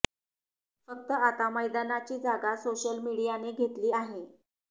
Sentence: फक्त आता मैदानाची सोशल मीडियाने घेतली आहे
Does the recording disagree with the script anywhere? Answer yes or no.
yes